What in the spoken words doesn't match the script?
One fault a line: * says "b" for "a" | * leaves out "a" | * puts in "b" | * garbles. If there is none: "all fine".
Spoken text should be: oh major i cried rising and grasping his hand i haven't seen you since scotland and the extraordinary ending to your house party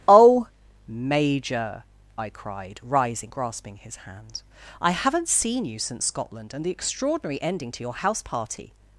* leaves out "and"